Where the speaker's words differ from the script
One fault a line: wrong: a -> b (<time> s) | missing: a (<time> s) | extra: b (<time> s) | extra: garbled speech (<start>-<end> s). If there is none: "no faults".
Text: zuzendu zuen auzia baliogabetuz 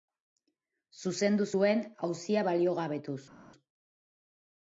no faults